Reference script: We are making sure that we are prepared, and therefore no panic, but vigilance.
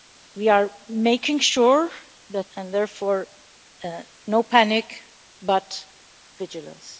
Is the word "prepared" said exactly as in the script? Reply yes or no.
no